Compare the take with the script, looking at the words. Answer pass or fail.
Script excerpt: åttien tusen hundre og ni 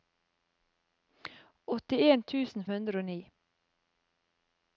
pass